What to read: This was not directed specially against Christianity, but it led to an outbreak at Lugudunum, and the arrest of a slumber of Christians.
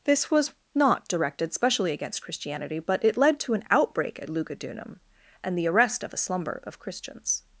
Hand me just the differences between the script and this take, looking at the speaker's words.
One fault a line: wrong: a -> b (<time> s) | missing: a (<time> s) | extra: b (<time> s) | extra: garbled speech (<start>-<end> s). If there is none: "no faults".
no faults